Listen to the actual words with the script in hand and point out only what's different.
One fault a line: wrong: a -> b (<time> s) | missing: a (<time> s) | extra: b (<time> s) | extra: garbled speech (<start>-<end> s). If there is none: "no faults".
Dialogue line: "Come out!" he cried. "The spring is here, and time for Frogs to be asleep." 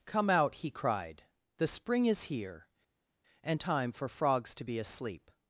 no faults